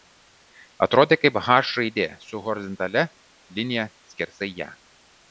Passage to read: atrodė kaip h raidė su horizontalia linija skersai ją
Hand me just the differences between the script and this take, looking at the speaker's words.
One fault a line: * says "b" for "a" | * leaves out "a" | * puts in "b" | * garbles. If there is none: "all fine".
all fine